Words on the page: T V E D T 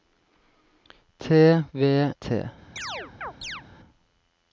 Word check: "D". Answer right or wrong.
wrong